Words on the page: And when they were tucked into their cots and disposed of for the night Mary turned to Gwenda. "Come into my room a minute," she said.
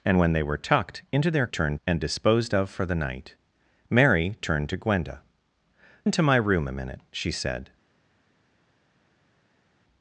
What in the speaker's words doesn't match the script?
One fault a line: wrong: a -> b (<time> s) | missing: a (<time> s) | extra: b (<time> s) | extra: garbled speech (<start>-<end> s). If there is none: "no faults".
wrong: cots -> turned (1.5 s)
missing: Come (5.2 s)